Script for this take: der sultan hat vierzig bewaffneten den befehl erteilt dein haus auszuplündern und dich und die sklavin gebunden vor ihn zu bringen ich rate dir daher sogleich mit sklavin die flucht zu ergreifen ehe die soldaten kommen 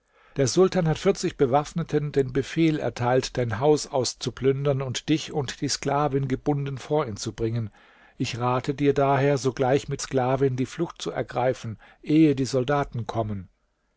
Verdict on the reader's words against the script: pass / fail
pass